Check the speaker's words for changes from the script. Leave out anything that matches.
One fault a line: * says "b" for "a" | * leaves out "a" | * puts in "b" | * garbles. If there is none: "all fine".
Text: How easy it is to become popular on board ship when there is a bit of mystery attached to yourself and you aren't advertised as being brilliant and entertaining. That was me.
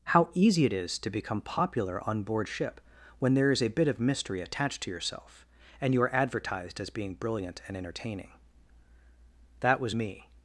* says "are" for "aren't"